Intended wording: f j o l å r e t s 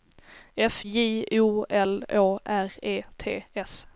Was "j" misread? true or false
false